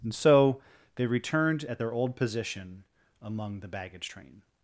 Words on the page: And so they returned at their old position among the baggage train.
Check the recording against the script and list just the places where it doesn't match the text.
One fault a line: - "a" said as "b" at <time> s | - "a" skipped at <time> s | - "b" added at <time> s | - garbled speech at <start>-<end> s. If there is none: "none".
none